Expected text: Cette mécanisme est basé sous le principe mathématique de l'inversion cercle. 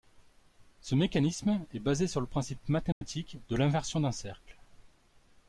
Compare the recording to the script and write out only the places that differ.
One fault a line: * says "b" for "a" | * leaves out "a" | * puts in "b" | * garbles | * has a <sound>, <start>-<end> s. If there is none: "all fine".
* says "Ce" for "Cette"
* says "sur" for "sous"
* has a dropout, 2.9-3.0 s
* puts in "d'un"